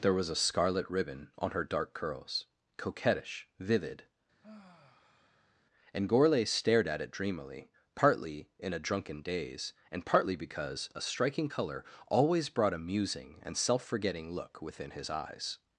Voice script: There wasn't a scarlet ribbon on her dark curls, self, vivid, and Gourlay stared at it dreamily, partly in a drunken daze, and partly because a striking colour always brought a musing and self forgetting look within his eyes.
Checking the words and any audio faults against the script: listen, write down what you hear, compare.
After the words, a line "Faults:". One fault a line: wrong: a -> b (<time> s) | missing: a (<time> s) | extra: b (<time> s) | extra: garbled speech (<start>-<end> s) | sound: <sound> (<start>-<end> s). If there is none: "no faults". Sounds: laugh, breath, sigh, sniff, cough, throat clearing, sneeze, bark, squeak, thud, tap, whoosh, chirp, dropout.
There was a scarlet ribbon on her dark curls, coquettish, vivid, and Gourlay stared at it dreamily, partly in a drunken daze, and partly because a striking colour always brought a musing and self forgetting look within his eyes.
Faults:
wrong: wasn't -> was (0.1 s)
wrong: self -> coquettish (2.8 s)
sound: sigh (4.4-5.6 s)